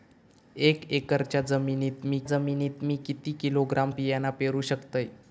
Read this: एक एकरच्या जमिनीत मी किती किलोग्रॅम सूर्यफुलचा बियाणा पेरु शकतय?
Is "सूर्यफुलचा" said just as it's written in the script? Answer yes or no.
no